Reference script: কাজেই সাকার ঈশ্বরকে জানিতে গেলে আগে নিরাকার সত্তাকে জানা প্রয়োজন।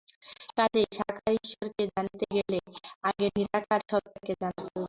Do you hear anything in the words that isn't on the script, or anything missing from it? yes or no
no